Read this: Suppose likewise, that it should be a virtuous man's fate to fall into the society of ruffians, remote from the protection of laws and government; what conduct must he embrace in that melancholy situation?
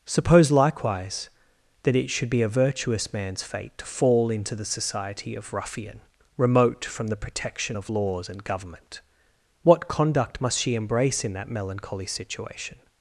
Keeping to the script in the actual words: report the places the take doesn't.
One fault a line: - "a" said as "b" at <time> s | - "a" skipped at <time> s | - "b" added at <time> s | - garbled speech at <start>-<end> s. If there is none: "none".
- "ruffians" said as "ruffian" at 5.5 s
- "he" said as "she" at 10.6 s